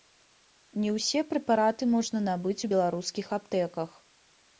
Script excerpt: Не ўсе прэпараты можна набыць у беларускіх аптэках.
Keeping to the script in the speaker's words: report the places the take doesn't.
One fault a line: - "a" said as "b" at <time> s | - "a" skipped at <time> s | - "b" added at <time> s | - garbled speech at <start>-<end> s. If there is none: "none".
none